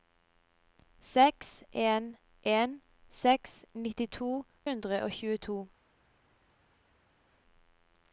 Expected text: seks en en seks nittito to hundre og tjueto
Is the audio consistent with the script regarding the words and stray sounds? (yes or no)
no